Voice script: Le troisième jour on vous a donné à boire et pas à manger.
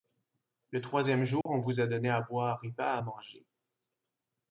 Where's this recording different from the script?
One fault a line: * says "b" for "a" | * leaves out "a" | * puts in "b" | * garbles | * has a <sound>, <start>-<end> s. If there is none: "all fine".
* has a dropout, 1.4-1.5 s